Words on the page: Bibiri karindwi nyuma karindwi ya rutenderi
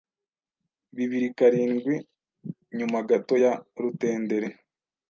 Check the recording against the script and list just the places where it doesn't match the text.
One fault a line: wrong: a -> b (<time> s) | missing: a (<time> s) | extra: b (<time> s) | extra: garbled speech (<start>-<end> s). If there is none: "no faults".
wrong: karindwi -> gato (3.1 s)